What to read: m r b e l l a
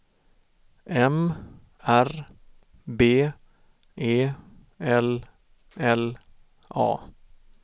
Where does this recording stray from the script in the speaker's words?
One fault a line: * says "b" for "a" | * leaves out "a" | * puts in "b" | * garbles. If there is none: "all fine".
all fine